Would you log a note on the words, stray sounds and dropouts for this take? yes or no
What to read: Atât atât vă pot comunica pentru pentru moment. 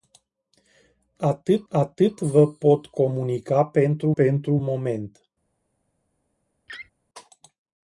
yes